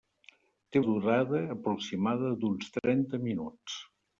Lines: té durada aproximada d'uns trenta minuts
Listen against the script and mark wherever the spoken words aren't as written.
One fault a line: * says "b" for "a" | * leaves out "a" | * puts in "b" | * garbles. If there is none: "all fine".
all fine